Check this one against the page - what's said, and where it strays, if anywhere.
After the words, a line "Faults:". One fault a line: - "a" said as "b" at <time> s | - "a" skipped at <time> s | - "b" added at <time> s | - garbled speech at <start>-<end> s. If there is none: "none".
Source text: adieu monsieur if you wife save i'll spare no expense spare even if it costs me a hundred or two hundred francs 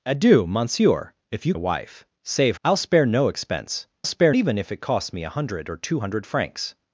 adieu monsieur if you wife save i'll spare no expense spare even if it costs me a hundred or two hundred francs
Faults:
none